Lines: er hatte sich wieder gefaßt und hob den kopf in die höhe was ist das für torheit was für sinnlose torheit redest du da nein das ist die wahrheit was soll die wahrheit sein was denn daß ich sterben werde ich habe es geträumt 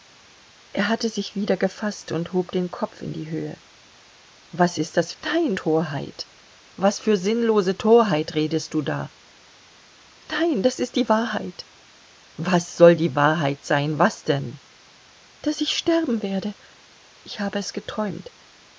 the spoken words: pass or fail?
fail